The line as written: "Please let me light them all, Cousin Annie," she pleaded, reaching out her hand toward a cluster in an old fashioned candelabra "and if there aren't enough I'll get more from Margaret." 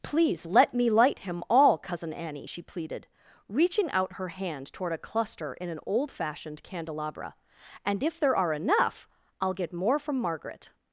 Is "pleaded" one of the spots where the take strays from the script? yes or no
no